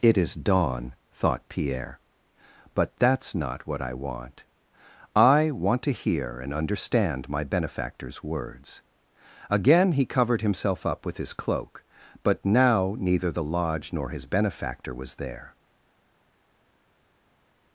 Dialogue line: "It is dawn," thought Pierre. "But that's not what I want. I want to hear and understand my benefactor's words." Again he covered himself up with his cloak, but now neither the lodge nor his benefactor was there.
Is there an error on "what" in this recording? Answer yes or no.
no